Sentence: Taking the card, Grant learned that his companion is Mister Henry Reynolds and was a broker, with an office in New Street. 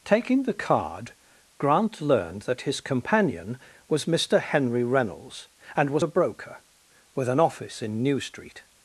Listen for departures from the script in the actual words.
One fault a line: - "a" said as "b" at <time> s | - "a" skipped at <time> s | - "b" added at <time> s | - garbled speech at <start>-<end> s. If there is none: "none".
- "is" said as "was" at 3.9 s